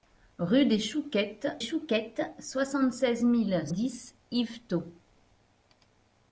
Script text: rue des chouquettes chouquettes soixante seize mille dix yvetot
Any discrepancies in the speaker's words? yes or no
no